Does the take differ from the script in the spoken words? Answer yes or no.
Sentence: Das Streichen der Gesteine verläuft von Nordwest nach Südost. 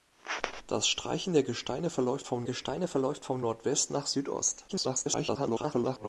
yes